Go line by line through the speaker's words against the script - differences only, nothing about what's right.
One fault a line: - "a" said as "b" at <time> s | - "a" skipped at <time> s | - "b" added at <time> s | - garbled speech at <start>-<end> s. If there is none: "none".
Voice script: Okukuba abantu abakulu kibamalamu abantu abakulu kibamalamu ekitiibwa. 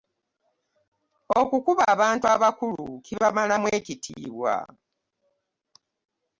- "abantu abakulu kibamalamu" skipped at 3.7 s